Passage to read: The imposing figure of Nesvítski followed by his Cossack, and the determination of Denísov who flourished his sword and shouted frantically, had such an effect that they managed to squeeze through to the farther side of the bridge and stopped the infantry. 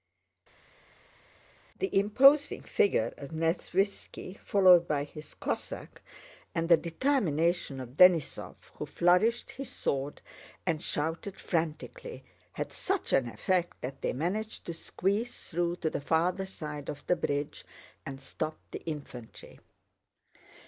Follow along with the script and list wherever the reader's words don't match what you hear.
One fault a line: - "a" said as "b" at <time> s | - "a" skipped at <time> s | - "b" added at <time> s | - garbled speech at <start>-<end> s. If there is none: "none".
none